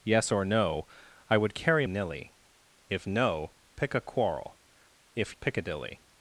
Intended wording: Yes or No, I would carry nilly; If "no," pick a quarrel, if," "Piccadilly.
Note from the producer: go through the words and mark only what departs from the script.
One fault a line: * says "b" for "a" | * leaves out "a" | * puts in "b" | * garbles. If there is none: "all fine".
all fine